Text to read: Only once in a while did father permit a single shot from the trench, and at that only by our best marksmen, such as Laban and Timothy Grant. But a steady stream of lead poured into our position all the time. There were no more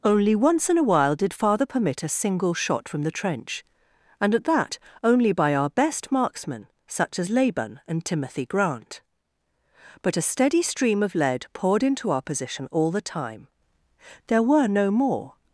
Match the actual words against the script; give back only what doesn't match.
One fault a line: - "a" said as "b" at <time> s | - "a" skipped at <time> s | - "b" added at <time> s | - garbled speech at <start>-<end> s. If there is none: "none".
none